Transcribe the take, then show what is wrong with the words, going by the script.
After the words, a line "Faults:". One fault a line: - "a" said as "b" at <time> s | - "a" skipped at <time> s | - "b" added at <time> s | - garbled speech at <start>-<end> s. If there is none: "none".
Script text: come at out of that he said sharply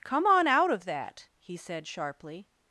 come on out of that he said sharply
Faults:
- "at" said as "on" at 0.2 s